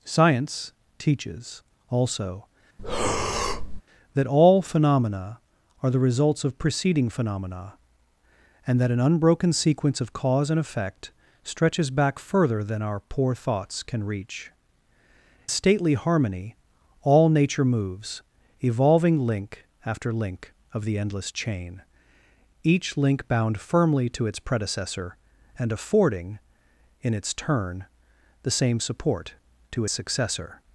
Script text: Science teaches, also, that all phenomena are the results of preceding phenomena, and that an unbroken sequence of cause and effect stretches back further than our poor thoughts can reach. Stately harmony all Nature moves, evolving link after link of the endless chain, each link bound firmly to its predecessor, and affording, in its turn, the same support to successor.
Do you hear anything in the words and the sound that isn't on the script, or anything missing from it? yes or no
yes